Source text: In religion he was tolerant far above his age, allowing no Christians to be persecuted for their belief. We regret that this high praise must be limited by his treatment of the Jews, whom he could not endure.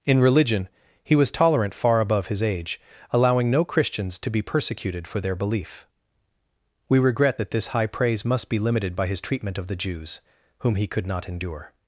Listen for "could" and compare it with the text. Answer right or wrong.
right